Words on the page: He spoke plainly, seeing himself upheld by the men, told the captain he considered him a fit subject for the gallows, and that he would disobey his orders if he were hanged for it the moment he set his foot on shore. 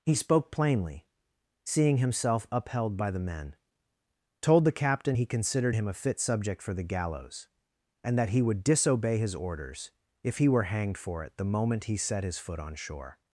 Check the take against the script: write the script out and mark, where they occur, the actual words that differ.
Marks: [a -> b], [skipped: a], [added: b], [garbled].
He spoke plainly, seeing himself upheld by the men, told the captain he considered him a fit subject for the gallows, and that he would disobey his orders if he were hanged for it the moment he set his foot on shore.